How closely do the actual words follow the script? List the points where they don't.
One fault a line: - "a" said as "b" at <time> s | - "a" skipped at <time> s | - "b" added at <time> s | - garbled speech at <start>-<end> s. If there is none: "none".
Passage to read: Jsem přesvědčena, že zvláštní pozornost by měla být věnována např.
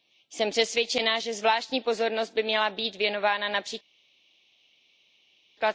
none